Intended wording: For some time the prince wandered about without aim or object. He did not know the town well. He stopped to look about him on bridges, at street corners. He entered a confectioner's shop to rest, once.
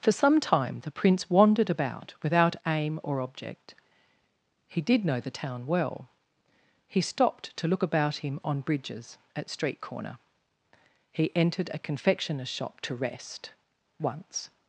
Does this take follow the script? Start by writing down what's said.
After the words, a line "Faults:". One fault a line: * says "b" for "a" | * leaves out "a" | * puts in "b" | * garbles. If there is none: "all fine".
For some time the prince wandered about without aim or object. He did know the town well. He stopped to look about him on bridges, at street corner. He entered a confectioner's shop to rest, once.
Faults:
* leaves out "not"
* says "corner" for "corners"